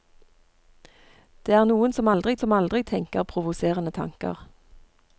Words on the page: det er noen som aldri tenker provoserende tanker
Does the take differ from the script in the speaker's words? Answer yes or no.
yes